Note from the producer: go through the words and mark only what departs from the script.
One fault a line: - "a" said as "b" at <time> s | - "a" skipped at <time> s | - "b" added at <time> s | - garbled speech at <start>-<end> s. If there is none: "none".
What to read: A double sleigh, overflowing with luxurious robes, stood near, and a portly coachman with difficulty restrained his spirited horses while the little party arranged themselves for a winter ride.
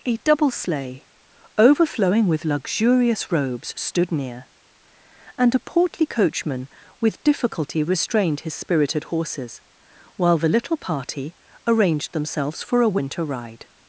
none